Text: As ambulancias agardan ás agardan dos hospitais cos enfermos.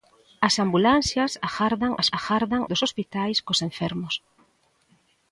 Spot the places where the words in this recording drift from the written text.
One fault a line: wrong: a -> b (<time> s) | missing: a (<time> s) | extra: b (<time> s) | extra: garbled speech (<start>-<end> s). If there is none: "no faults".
no faults